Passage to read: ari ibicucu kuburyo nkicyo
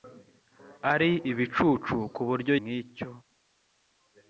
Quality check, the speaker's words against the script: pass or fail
pass